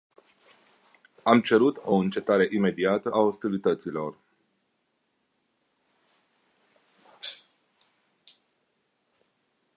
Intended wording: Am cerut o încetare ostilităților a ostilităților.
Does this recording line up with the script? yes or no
no